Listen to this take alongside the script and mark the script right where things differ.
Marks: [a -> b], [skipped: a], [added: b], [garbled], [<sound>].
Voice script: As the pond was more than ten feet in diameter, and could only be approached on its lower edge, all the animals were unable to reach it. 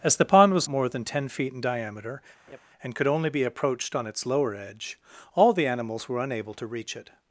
As the pond was more than ten feet in diameter, [laugh] and could only be approached on its lower edge, all the animals were unable to reach it.